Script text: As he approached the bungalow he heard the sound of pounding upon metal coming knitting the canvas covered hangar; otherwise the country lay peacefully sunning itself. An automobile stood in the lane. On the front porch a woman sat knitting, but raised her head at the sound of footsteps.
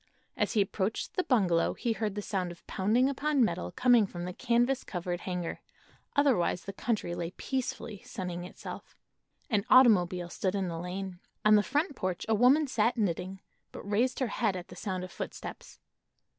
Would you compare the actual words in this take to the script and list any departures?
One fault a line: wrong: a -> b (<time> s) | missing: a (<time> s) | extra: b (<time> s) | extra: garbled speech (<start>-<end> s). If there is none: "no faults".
wrong: knitting -> from (4.1 s)